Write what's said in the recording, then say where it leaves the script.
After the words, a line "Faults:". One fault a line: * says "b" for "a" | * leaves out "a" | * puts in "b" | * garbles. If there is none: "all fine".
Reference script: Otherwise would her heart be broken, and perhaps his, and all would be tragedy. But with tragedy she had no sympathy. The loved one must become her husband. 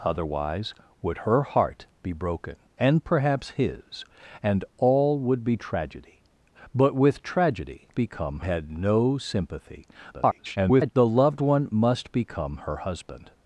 Otherwise would her heart be broken, and perhaps his, and all would be tragedy. But with tragedy become had no sympathy. [garbled] The loved one must become her husband.
Faults:
* says "become" for "she"
* garbles